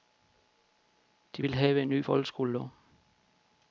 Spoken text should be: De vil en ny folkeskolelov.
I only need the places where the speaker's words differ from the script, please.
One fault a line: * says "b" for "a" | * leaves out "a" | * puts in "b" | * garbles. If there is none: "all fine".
* puts in "have"